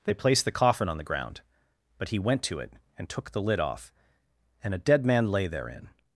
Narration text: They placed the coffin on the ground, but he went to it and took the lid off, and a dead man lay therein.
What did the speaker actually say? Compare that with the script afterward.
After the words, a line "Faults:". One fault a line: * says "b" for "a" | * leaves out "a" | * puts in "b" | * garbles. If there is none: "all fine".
They placed the coffin on the ground, but he went to it and took the lid off, and a dead man lay therein.
Faults:
all fine